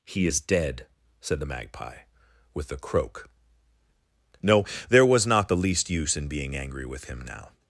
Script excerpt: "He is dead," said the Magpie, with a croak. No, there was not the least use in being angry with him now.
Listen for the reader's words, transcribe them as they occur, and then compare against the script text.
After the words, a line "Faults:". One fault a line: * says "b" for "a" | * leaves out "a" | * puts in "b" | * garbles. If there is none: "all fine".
"He is dead," said the Magpie, with a croak. No, there was not the least use in being angry with him now.
Faults:
all fine